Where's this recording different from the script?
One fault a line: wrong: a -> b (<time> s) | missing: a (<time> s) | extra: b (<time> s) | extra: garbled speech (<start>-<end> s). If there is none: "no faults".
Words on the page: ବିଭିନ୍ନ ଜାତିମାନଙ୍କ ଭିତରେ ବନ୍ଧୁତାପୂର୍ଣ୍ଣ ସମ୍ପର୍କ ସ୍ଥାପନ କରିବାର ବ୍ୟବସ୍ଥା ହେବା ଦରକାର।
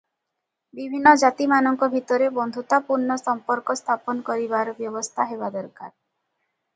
no faults